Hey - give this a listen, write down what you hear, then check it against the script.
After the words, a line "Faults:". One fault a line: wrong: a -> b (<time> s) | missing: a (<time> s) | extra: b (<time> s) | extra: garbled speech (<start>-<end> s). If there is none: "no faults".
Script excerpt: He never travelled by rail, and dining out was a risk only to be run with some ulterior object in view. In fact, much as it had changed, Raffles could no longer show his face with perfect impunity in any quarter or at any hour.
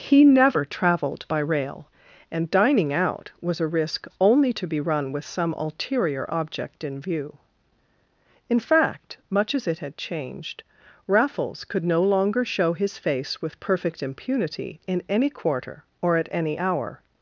He never travelled by rail, and dining out was a risk only to be run with some ulterior object in view. In fact, much as it had changed, Raffles could no longer show his face with perfect impunity in any quarter or at any hour.
Faults:
no faults